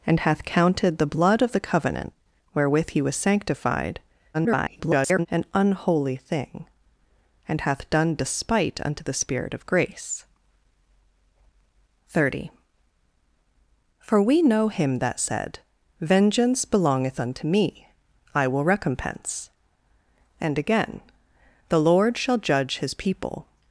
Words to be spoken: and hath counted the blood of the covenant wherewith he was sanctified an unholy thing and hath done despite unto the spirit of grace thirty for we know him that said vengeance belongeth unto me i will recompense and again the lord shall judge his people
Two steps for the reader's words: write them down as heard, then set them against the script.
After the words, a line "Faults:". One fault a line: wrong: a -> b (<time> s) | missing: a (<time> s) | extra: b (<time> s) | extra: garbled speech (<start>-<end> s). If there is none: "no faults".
and hath counted the blood of the covenant wherewith he was sanctified [garbled] an unholy thing and hath done despite unto the spirit of grace thirty for we know him that said vengeance belongeth unto me i will recompense and again the lord shall judge his people
Faults:
extra: garbled speech (4.3-5.3 s)